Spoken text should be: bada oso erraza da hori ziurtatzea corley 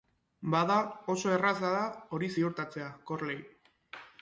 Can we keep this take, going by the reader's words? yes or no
yes